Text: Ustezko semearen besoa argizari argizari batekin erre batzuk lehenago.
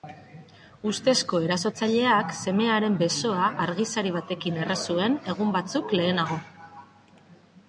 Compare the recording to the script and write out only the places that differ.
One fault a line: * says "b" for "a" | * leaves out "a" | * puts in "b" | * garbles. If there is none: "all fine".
* puts in "erasotzaileak"
* leaves out "argizari"
* puts in "zuen egun"